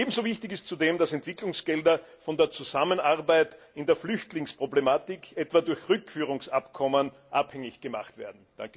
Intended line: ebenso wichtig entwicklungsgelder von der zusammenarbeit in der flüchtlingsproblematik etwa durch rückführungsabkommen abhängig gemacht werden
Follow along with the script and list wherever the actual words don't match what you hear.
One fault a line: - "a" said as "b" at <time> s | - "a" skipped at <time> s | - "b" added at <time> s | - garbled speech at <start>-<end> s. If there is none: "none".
- "ist zudem dass" added at 0.5 s